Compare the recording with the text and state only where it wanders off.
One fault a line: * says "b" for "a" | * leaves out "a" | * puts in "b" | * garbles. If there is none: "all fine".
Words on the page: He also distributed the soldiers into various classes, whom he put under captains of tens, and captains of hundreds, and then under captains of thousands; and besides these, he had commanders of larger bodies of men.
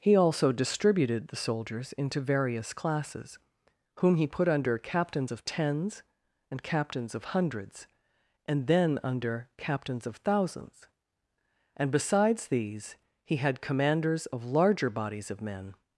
all fine